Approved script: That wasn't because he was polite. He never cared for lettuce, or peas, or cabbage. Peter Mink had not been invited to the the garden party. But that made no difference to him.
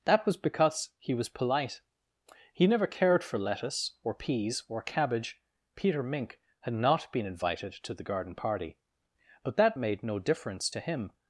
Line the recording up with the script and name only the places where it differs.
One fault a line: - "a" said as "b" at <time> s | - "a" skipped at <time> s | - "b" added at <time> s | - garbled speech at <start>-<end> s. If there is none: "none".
- "wasn't" said as "was" at 0.2 s
- "the" skipped at 8.0 s